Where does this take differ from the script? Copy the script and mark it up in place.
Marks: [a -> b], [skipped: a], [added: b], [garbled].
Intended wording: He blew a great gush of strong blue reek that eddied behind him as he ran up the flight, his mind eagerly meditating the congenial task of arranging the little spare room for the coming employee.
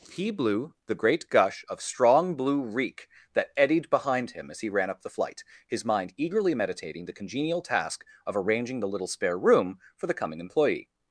He blew [a -> the] great gush of strong blue reek that eddied behind him as he ran up the flight, his mind eagerly meditating the congenial task of arranging the little spare room for the coming employee.